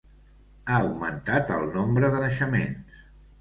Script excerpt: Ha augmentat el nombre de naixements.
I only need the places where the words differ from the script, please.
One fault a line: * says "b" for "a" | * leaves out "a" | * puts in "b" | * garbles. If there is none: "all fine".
all fine